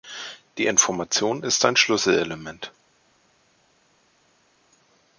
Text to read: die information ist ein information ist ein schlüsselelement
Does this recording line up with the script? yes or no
no